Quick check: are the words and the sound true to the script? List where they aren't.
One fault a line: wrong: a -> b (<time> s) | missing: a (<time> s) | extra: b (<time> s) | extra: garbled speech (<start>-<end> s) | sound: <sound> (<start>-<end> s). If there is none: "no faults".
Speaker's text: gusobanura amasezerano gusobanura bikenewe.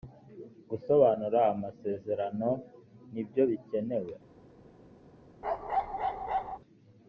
wrong: gusobanura -> nibyo (3.1 s)
sound: bark (5.4-6.6 s)